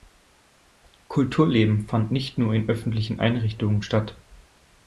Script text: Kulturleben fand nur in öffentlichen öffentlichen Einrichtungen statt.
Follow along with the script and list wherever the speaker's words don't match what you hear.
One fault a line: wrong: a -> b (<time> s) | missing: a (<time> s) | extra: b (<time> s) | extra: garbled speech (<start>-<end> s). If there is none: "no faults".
extra: nicht (2.1 s)
missing: öffentlichen (3.2 s)